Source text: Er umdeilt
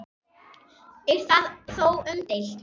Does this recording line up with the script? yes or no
no